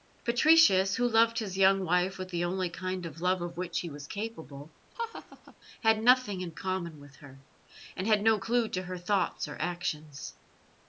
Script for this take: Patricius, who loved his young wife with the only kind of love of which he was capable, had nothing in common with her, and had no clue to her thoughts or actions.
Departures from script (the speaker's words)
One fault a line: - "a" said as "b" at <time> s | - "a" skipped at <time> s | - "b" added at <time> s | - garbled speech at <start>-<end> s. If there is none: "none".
none